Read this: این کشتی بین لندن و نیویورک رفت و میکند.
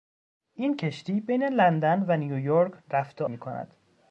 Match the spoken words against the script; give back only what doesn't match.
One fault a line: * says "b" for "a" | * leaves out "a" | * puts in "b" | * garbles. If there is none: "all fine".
all fine